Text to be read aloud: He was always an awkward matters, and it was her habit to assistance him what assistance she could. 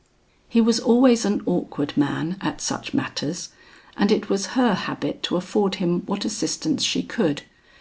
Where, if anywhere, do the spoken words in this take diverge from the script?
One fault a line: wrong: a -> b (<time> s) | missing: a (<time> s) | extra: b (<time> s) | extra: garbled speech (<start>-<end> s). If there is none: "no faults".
extra: man at such (1.9 s)
wrong: assistance -> afford (5.4 s)